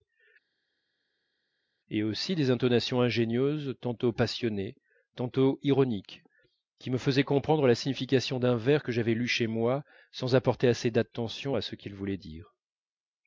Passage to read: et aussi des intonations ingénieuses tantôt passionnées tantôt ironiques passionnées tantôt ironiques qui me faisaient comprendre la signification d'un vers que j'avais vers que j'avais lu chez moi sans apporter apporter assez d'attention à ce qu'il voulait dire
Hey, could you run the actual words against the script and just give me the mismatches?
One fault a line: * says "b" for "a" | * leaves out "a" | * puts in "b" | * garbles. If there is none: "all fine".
* leaves out "passionnées tantôt ironiques"
* leaves out "vers que j'avais"
* leaves out "apporter"